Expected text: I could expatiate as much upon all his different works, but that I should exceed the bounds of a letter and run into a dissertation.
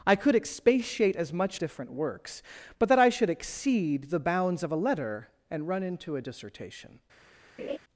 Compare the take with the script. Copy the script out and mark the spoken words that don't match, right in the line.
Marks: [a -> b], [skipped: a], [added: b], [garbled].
I could expatiate as much [skipped: upon all his] different works, but that I should exceed the bounds of a letter and run into a dissertation.